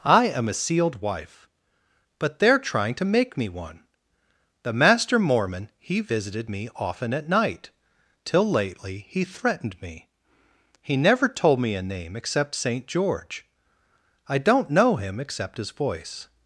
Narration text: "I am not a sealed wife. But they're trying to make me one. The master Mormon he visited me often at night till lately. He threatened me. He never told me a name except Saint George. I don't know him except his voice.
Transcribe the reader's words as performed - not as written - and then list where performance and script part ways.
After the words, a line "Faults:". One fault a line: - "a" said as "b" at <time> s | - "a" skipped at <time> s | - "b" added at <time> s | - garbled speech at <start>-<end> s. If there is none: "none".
"I am a sealed wife. But they're trying to make me one. The master Mormon he visited me often at night till lately. He threatened me. He never told me a name except Saint George. I don't know him except his voice.
Faults:
- "not" skipped at 0.5 s